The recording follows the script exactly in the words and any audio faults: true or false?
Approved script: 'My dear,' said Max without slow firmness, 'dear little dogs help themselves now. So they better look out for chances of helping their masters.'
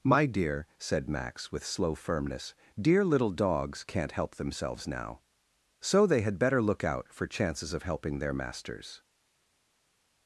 false